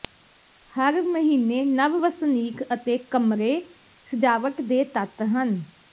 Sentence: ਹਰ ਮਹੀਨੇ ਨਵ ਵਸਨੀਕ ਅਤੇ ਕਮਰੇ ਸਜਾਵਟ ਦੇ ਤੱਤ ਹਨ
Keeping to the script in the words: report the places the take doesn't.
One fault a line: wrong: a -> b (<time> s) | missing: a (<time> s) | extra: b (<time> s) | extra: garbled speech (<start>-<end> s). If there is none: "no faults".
no faults